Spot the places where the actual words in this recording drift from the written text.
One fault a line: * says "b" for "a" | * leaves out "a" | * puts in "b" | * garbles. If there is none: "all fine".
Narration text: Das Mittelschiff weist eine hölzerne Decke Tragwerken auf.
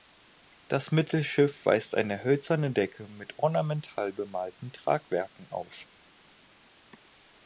* puts in "mit ornamental bemalten"